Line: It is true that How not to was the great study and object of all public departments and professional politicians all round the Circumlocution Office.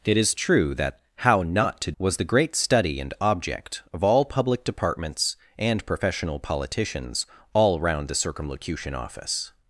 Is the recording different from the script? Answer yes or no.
no